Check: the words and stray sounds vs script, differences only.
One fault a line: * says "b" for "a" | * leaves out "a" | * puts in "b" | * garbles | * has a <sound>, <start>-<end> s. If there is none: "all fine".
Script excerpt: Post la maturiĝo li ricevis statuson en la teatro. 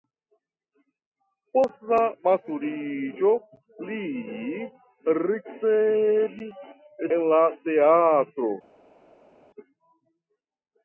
* leaves out "statuson"